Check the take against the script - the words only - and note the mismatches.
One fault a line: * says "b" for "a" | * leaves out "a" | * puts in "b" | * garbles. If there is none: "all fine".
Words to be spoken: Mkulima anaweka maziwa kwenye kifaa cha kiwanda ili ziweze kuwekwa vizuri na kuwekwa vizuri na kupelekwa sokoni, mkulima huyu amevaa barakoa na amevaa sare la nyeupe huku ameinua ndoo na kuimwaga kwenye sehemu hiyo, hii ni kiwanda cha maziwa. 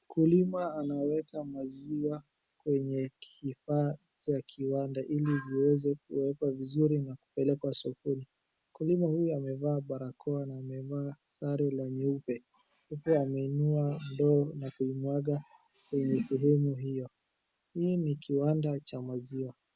* leaves out "kuwekwa vizuri na"